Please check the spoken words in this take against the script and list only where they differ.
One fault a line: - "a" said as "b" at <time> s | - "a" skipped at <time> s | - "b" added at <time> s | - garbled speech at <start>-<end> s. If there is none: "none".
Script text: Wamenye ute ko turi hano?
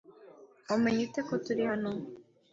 none